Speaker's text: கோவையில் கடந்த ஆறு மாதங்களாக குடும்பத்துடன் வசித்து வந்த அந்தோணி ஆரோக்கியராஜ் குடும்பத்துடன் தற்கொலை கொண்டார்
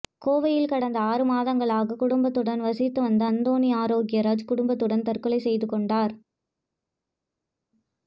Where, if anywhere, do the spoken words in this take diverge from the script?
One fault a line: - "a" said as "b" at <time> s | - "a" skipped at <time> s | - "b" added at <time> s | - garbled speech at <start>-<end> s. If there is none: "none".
- "செய்து" added at 5.4 s